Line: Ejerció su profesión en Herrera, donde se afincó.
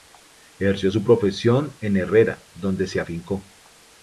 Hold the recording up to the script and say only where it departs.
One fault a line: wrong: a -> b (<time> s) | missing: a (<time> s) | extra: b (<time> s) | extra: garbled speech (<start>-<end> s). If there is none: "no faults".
no faults